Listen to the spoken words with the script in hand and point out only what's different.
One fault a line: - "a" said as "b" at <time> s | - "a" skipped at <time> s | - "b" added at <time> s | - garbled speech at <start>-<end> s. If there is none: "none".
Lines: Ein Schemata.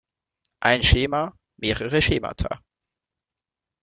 - "Schema mehrere" added at 0.8 s